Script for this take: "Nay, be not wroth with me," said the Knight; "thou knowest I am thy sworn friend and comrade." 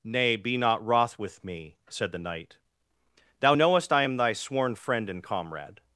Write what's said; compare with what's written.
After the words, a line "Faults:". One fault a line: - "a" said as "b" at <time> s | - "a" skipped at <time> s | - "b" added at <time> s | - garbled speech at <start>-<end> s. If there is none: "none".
"Nay, be not wroth with me," said the Knight; "thou knowest I am thy sworn friend and comrade."
Faults:
none